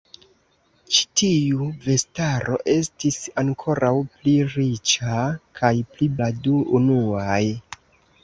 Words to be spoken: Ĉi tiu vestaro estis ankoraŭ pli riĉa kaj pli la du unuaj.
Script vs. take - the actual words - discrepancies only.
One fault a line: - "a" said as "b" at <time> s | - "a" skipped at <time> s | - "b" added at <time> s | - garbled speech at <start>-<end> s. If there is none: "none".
none